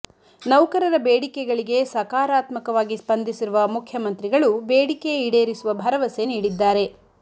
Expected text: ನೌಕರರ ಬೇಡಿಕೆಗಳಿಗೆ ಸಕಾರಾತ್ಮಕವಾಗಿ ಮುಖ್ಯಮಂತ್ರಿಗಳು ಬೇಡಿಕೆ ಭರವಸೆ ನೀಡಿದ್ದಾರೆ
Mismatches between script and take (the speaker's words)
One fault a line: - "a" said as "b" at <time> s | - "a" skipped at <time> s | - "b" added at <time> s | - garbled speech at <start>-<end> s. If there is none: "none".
- "ಸ್ಪಂದಿಸಿರುವ" added at 2.9 s
- "ಈಡೇರಿಸುವ" added at 5.3 s